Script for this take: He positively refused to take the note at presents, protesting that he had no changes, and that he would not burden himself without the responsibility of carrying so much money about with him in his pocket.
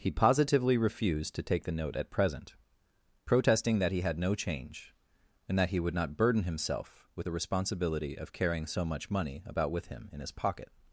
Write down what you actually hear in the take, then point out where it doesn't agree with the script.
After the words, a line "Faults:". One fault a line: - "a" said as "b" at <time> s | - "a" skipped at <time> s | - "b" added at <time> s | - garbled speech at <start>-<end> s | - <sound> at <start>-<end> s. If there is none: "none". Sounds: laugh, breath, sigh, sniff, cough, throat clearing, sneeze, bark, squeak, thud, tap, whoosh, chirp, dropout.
He positively refused to take the note at present, protesting that he had no change, and that he would not burden himself with the responsibility of carrying so much money about with him in his pocket.
Faults:
- "presents" said as "present" at 2.1 s
- "changes" said as "change" at 4.3 s
- "without" said as "with" at 7.2 s